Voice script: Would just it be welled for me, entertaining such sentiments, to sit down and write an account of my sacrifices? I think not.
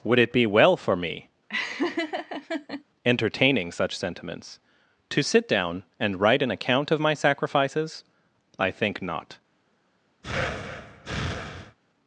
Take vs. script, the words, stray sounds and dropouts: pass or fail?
fail